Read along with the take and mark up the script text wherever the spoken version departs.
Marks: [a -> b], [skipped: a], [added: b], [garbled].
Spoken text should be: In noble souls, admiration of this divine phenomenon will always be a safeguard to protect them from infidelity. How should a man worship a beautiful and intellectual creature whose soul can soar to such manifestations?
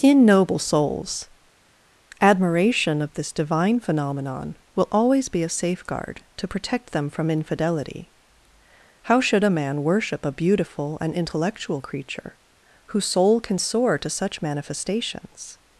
In noble souls, admiration of this divine phenomenon will always be a safeguard to protect them from infidelity. How should a man worship a beautiful and intellectual creature whose soul can soar to such manifestations?